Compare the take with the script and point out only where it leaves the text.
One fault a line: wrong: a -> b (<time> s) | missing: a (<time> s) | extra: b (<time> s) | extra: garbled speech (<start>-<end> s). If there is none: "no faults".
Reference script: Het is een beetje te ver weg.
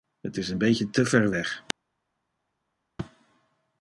no faults